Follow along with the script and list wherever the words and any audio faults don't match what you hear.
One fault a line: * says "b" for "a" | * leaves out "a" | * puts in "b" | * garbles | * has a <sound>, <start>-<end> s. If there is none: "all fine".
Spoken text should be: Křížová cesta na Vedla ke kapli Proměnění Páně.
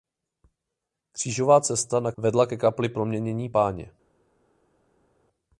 all fine